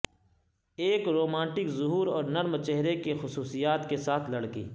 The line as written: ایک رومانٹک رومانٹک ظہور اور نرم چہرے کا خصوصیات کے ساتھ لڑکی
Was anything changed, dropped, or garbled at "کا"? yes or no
yes